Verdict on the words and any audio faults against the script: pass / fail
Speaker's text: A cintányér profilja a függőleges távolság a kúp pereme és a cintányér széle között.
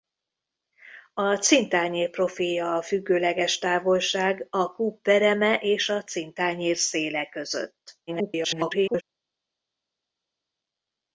fail